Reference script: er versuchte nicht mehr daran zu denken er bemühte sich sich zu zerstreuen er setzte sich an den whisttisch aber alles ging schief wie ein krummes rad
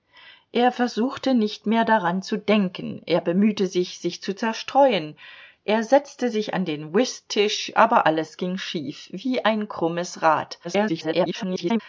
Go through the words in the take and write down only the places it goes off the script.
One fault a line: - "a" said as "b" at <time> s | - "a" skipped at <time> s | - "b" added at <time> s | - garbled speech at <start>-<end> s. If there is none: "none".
- garbled speech at 10.6-11.8 s